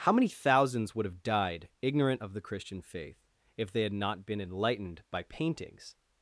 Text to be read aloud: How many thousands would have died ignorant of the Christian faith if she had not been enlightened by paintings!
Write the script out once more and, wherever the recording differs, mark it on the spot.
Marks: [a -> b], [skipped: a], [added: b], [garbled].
How many thousands would have died ignorant of the Christian faith if [she -> they] had not been enlightened by paintings!